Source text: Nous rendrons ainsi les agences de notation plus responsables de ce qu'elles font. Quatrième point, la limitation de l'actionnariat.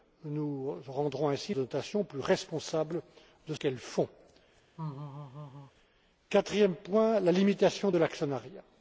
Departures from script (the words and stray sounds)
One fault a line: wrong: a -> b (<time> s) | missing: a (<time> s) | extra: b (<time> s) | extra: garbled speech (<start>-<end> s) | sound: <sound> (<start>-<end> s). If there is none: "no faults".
missing: les agences (1.5 s)
missing: ce (3.5 s)
sound: laugh (4.8-5.7 s)